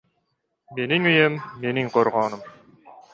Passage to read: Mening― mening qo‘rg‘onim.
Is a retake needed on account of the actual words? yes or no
yes